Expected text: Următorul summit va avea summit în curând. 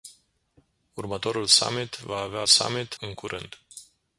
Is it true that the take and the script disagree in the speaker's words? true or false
false